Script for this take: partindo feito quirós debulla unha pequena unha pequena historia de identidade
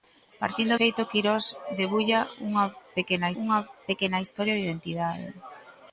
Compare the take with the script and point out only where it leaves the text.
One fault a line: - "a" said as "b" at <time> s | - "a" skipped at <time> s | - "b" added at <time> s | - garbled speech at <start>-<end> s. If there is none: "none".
none